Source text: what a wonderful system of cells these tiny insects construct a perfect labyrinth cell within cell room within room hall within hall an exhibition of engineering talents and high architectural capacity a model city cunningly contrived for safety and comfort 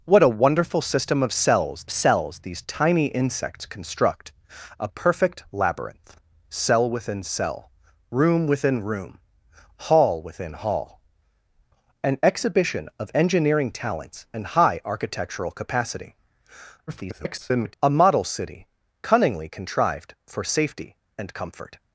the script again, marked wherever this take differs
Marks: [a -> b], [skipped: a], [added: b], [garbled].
what a wonderful system of cells [added: cells] these tiny insects construct a perfect labyrinth cell within cell room within room hall within hall an exhibition of engineering talents and high architectural capacity [garbled] a model city cunningly contrived for safety and comfort